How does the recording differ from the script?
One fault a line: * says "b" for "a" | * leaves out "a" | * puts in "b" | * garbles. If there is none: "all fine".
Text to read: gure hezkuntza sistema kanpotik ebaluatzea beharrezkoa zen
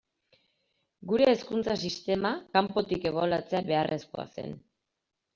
all fine